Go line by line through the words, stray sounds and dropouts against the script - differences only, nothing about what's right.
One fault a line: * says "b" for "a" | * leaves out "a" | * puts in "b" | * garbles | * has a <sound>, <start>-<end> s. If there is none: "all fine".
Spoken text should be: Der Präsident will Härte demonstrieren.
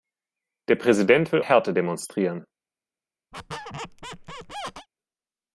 * has a squeak, 3.3-4.9 s